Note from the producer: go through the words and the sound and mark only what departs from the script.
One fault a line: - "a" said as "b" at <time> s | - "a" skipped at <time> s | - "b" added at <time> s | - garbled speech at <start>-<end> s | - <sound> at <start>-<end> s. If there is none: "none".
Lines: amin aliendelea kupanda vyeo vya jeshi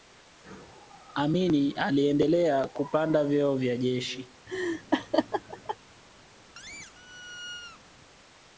- laugh at 4.5-5.8 s
- squeak at 6.5-7.8 s